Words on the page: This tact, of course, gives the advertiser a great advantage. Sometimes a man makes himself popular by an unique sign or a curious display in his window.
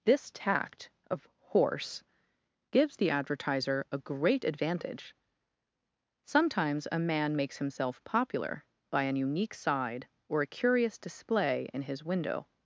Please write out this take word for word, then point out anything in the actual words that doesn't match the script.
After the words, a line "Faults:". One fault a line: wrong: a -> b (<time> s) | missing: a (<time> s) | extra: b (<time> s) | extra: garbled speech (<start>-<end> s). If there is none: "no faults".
This tact, of horse, gives the advertiser a great advantage. Sometimes a man makes himself popular by an unique side or a curious display in his window.
Faults:
wrong: course -> horse (1.4 s)
wrong: sign -> side (9.5 s)